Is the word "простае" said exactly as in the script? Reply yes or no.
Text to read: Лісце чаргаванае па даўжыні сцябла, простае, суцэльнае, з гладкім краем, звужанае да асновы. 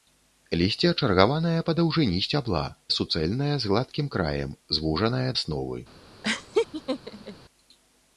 no